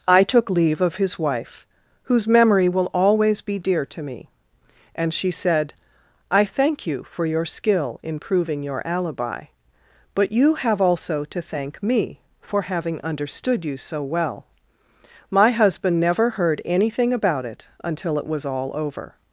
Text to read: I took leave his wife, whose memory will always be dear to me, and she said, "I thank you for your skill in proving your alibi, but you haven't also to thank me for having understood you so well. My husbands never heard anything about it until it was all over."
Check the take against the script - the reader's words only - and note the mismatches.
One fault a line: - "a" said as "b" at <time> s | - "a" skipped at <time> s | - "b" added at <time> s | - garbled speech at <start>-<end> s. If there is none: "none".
- "of" added at 0.8 s
- "haven't" said as "have" at 10.5 s
- "husbands" said as "husband" at 15.5 s